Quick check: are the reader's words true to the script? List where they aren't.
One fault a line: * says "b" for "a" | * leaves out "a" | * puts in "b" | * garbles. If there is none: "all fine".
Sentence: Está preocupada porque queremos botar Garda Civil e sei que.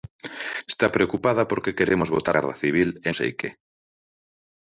all fine